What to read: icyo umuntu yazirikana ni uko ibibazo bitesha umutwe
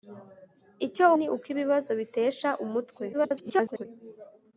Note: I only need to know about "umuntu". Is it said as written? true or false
false